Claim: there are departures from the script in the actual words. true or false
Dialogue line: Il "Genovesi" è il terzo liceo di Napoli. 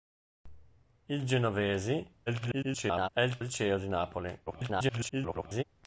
true